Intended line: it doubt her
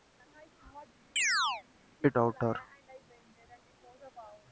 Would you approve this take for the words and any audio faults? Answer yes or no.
no